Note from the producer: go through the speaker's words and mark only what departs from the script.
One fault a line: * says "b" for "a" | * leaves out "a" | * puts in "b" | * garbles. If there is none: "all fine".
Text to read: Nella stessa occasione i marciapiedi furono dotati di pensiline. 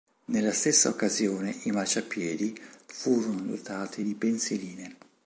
all fine